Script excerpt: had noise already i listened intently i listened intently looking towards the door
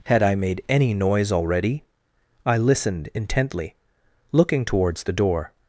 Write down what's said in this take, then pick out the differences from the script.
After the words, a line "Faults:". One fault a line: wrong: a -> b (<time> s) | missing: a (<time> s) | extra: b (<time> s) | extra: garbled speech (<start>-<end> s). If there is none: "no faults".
had i made any noise already i listened intently looking towards the door
Faults:
wrong: noise already i listened intently -> i made any noise already (0.2 s)